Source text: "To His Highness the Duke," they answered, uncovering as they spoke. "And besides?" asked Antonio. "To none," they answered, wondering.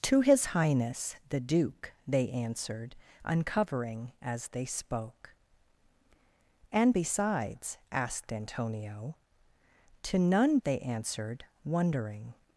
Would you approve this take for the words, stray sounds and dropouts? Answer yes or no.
yes